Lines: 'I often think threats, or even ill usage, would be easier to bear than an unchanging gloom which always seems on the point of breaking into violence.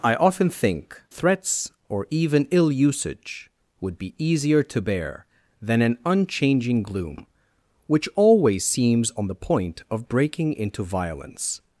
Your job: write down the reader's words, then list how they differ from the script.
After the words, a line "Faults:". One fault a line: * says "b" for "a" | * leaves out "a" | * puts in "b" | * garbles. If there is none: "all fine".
'I often think threats, or even ill usage, would be easier to bear than an unchanging gloom which always seems on the point of breaking into violence.
Faults:
all fine